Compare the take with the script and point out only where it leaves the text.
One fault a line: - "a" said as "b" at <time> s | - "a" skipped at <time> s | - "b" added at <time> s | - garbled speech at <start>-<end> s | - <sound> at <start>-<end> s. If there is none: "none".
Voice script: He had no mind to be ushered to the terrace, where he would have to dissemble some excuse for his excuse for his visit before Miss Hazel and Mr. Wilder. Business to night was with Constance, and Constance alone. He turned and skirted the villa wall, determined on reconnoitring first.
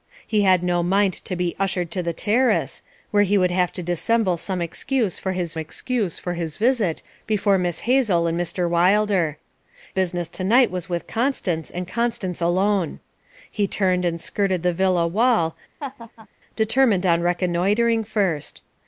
- laugh at 15.8-16.3 s